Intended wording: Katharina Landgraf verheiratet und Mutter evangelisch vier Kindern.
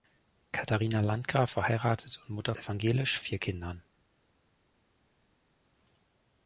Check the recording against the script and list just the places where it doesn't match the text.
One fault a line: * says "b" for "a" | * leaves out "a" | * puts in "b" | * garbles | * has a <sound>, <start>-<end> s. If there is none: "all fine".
all fine